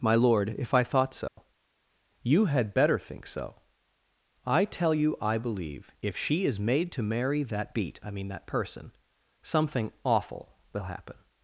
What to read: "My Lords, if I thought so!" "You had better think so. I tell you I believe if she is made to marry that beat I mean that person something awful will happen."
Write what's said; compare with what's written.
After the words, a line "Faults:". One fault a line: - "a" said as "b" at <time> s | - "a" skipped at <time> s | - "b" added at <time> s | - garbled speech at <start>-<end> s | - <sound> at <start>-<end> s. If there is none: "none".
"My Lord, if I thought so!" "You had better think so. I tell you I believe if she is made to marry that beat I mean that person something awful will happen."
Faults:
- "Lords" said as "Lord" at 0.1 s
- dropout at 1.3-1.4 s